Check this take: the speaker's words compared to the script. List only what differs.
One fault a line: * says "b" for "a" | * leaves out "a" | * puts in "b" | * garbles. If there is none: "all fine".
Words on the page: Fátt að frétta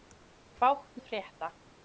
all fine